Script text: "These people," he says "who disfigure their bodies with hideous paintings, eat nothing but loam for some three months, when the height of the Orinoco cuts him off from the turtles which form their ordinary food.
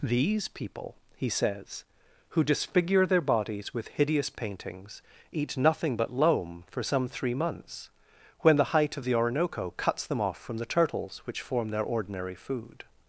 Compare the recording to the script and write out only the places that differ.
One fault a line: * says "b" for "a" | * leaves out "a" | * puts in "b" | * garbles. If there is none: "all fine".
* says "them" for "him"